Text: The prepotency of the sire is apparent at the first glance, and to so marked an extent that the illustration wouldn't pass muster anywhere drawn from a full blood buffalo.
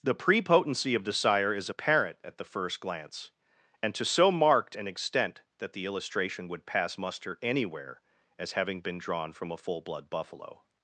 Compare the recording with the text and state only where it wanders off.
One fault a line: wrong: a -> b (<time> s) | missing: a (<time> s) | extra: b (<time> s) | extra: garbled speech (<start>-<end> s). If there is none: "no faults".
wrong: wouldn't -> would (6.5 s)
extra: as having been (8.4 s)